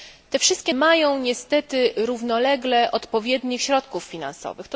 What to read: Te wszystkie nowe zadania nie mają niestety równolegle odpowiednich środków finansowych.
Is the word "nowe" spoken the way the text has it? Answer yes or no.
no